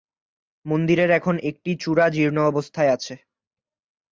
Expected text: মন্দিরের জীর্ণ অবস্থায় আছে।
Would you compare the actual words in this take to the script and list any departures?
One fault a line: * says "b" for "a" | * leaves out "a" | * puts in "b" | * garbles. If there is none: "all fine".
* puts in "এখন একটি চূড়া"